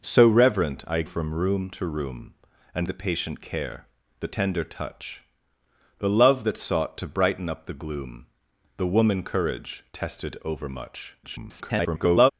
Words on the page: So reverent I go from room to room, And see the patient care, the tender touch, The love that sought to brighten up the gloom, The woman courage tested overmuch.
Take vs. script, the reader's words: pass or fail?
fail